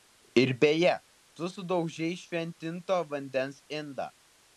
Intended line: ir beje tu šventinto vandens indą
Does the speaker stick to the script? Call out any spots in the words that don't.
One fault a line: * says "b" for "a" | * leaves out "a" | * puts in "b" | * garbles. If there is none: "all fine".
* puts in "sudaužei"